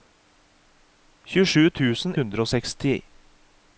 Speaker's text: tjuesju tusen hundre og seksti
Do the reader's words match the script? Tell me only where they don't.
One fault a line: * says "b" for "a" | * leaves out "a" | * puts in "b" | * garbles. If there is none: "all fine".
all fine